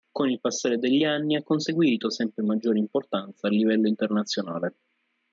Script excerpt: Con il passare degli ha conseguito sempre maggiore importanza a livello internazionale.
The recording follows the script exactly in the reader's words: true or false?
false